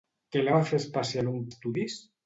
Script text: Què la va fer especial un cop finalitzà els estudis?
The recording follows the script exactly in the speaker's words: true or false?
false